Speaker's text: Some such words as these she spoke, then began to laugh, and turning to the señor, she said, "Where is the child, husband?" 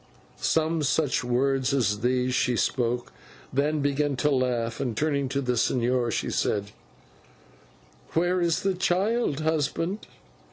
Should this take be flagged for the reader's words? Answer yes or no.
no